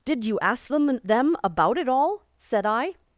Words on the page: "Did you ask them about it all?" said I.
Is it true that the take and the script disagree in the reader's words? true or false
true